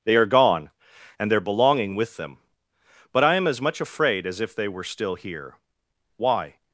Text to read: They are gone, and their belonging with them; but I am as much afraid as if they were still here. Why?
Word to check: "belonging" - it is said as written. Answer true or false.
true